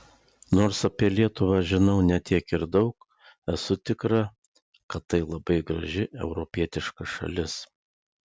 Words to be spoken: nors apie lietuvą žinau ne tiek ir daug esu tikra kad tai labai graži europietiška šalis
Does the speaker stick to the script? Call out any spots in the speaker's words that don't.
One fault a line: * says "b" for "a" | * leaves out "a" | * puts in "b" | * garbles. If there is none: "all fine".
all fine